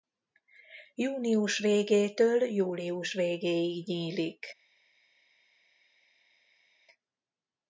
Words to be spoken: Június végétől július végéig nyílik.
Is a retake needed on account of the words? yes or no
no